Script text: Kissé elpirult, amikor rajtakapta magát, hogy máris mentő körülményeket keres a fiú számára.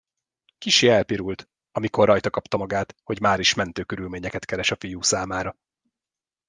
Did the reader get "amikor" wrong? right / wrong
right